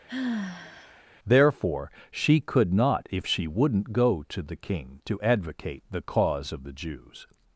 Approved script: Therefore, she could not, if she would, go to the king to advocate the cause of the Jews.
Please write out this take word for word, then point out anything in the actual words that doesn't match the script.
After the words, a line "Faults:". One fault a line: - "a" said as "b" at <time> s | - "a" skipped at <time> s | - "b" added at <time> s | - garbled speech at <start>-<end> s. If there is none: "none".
Therefore, she could not, if she wouldn't, go to the king to advocate the cause of the Jews.
Faults:
- "would" said as "wouldn't" at 3.5 s